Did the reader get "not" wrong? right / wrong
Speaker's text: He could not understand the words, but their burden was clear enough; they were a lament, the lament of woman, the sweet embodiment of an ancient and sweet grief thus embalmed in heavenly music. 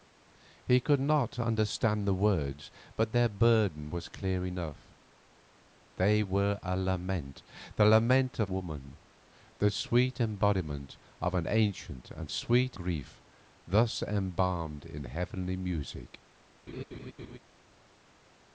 right